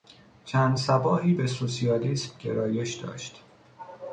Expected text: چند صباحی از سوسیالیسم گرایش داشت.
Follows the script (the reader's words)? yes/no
no